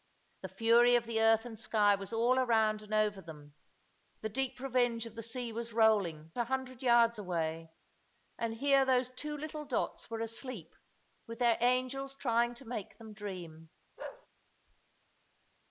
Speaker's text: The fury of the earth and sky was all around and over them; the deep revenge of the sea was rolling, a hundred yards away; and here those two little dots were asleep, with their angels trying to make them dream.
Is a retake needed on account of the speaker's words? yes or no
no